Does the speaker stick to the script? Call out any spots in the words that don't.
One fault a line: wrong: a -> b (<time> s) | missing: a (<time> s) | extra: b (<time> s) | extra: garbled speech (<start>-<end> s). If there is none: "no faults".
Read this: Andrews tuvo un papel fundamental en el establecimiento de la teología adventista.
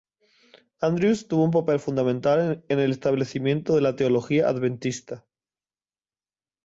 no faults